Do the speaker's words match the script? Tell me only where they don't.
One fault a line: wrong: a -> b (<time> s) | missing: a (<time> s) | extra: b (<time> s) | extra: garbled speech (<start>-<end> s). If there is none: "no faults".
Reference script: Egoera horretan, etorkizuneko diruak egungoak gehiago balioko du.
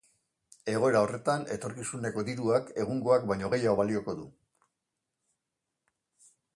extra: baino (3.3 s)